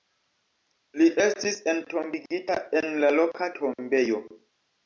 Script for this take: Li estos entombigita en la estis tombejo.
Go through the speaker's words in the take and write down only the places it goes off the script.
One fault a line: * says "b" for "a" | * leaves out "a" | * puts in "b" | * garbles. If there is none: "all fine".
* says "estis" for "estos"
* says "loka" for "estis"